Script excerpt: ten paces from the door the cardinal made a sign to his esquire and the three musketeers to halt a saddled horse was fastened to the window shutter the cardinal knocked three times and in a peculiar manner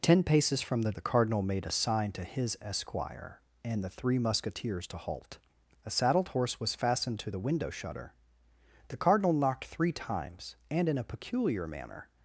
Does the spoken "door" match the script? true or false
false